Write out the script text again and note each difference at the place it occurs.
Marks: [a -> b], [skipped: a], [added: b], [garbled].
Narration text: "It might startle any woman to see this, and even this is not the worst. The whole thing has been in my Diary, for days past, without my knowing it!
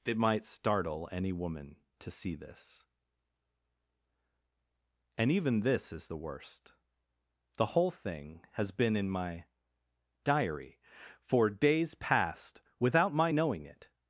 "It might startle any woman to see this, and even this is [skipped: not] the worst. The whole thing has been in my Diary, for days past, without my knowing it!